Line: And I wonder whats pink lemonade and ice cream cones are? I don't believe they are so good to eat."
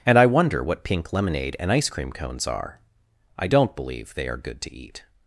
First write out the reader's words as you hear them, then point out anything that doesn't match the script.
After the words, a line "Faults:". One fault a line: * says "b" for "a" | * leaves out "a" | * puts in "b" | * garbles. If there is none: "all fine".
And I wonder what pink lemonade and ice cream cones are? I don't believe they are good to eat."
Faults:
* says "what" for "whats"
* leaves out "so"